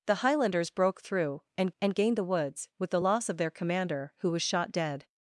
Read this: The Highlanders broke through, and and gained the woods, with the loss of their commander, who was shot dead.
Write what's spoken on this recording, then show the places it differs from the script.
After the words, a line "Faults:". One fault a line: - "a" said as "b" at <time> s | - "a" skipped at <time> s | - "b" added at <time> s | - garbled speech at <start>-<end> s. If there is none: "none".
The Highlanders broke through, and and gained the woods, with the loss of their commander, who was shot dead.
Faults:
none